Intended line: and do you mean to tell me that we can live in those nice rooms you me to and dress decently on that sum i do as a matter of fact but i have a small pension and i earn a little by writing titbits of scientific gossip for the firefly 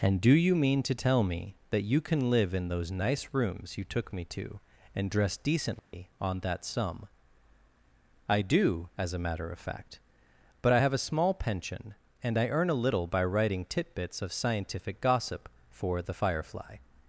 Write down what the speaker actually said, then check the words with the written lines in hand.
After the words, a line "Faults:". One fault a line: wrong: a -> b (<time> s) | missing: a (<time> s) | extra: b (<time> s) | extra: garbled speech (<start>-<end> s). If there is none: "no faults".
and do you mean to tell me that you can live in those nice rooms you took me to and dress decently on that sum i do as a matter of fact but i have a small pension and i earn a little by writing titbits of scientific gossip for the firefly
Faults:
wrong: we -> you (1.8 s)
extra: took (3.8 s)